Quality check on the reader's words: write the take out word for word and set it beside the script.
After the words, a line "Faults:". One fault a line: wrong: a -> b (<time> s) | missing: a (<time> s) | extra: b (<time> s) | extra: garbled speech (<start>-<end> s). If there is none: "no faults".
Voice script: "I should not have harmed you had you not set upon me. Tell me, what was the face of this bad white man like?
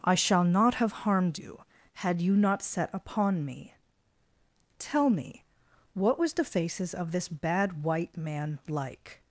"I shall not have harmed you had you not set upon me. Tell me, what was the faces of this bad white man like?
Faults:
wrong: should -> shall (0.1 s)
wrong: face -> faces (6.4 s)